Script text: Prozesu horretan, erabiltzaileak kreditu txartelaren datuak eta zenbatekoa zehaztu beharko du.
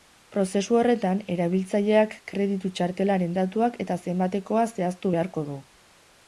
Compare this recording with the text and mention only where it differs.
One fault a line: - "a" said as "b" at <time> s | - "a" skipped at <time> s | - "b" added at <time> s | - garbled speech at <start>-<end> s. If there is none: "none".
none